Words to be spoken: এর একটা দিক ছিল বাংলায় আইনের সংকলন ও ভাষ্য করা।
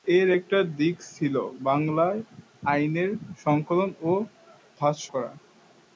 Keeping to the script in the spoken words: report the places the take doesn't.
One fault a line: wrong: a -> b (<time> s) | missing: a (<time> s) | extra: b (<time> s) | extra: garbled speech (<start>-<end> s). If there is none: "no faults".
no faults